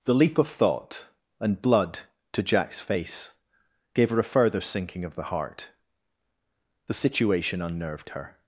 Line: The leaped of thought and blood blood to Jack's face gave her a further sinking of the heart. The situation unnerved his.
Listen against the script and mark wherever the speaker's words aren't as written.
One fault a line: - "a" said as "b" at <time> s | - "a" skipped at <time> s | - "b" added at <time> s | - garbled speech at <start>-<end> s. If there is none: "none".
- "leaped" said as "leap" at 0.1 s
- "blood" skipped at 2.0 s
- "his" said as "her" at 8.1 s